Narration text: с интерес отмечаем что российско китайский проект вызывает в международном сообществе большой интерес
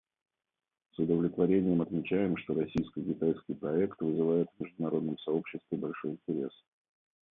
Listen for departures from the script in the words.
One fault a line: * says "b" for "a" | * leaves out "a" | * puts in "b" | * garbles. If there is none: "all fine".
* says "удовлетворением" for "интерес"